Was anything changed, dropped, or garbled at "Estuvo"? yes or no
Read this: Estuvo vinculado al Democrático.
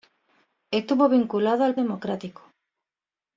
no